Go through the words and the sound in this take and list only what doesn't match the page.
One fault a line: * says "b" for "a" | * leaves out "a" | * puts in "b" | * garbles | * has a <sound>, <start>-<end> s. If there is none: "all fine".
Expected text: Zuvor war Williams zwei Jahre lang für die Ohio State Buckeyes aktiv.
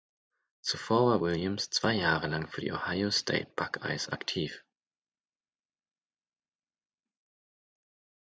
all fine